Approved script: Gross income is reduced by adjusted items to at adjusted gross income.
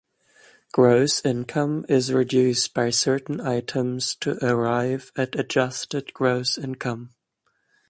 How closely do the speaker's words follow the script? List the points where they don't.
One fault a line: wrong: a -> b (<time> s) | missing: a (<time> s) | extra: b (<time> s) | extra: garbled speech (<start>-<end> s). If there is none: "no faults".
wrong: adjusted -> certain (2.9 s)
extra: arrive (4.4 s)